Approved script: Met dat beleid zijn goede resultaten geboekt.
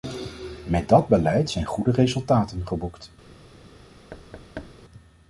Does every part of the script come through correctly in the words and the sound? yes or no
no